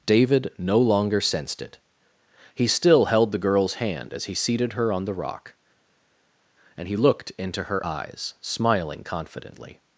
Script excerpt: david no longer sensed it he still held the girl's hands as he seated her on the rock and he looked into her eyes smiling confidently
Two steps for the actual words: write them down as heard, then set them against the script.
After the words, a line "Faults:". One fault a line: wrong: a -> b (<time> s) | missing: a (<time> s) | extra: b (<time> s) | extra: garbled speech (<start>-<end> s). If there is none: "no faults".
david no longer sensed it he still held the girl's hand as he seated her on the rock and he looked into her eyes smiling confidently
Faults:
wrong: hands -> hand (3.8 s)